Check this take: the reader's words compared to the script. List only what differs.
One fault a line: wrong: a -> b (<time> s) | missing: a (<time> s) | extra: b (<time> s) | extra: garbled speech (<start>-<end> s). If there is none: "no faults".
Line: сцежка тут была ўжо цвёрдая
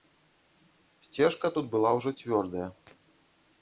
no faults